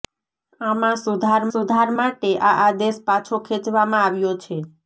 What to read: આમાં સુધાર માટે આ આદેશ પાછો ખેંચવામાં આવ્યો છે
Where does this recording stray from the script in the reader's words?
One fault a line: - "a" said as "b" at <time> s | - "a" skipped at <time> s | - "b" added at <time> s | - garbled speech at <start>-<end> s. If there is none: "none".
- "સુધાર" added at 1.5 s